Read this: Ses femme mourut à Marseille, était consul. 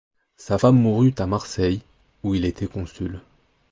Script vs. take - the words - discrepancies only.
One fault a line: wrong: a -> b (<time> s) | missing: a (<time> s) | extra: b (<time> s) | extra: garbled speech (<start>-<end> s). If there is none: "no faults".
wrong: Ses -> Sa (0.3 s)
extra: où il (2.2 s)